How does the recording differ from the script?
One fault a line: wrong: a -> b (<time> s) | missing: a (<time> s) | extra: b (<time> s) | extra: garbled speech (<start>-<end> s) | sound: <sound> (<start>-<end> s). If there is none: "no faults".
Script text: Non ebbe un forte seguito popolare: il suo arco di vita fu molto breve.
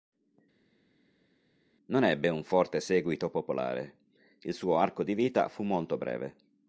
no faults